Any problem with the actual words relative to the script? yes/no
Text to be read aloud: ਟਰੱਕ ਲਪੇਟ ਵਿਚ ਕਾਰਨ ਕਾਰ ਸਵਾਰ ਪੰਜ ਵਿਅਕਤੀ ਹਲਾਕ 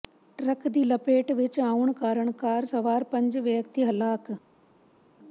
yes